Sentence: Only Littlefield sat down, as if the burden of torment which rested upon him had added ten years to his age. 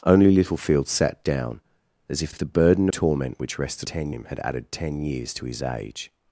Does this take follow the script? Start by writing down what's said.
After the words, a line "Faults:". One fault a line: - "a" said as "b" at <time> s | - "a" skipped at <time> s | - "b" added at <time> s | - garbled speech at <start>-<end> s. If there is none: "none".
Only Littlefield sat down, as if if the burden torment which rested ten him had added ten years to his age.
Faults:
- "if" added at 2.3 s
- "of" skipped at 2.9 s
- "upon" said as "ten" at 3.8 s